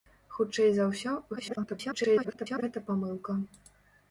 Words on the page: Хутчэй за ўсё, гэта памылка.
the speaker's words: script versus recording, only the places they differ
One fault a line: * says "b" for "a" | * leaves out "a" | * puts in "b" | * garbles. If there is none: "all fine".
* garbles